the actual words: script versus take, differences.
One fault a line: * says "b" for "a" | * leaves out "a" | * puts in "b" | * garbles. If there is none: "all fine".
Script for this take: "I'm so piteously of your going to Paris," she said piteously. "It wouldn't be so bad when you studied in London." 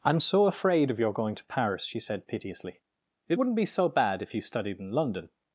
* says "afraid" for "piteously"
* says "if" for "when"